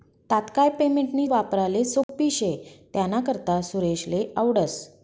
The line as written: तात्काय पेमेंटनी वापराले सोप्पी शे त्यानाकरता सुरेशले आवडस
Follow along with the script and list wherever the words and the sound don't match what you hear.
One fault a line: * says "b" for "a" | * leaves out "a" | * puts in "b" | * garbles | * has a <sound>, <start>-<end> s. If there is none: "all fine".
* has a dropout, 2.0-2.1 s